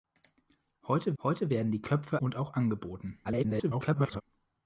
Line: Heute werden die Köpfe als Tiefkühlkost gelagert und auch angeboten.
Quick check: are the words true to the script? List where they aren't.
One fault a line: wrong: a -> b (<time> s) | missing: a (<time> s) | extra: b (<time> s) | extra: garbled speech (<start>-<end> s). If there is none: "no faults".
extra: heute (1.2 s)
missing: als Tiefkühlkost gelagert (2.2 s)
extra: garbled speech (3.2-4.2 s)